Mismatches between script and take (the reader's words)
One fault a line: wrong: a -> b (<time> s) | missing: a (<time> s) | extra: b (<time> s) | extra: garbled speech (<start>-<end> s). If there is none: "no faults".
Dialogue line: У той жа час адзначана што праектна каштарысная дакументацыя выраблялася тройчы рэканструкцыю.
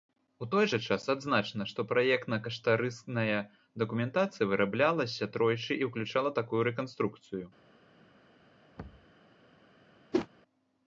extra: і ўключала такую (5.8 s)